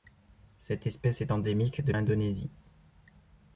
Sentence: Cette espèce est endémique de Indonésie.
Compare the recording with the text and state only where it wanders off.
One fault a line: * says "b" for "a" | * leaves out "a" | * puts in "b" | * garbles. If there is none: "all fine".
all fine